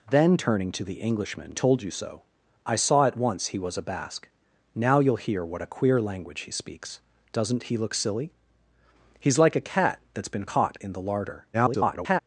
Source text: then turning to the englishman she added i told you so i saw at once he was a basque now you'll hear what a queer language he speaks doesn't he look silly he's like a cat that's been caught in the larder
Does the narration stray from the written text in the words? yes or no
yes